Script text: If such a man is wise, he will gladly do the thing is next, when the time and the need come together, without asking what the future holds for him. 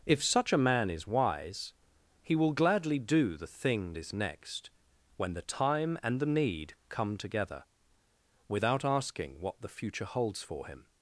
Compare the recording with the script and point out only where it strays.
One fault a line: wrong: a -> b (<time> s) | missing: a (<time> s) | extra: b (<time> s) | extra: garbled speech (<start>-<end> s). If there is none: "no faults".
no faults